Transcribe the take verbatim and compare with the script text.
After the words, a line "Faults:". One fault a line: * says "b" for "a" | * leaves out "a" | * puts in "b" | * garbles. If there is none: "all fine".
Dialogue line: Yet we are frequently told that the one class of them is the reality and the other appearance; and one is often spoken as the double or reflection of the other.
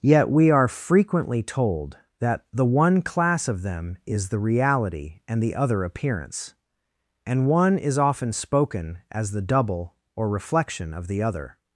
Yet we are frequently told that the one class of them is the reality and the other appearance; and one is often spoken as the double or reflection of the other.
Faults:
all fine